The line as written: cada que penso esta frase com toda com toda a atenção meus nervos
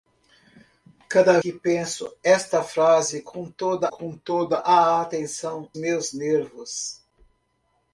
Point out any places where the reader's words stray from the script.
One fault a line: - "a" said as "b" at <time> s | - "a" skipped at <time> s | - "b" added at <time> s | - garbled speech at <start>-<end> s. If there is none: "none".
none